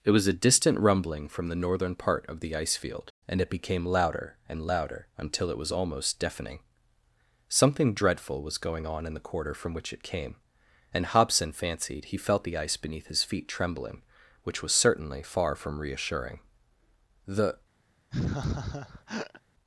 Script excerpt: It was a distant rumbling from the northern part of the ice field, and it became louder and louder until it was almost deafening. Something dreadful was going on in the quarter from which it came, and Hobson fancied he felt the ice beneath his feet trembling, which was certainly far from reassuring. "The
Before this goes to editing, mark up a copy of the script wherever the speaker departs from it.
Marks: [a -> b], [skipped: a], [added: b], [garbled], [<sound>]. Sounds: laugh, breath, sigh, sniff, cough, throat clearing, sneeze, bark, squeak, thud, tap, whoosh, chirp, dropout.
It was a distant rumbling from the northern part of the ice field, and it became louder and louder until it was almost deafening. Something dreadful was going on in the quarter from which it came, and Hobson fancied he felt the ice beneath his feet trembling, which was certainly far from reassuring. "The [laugh]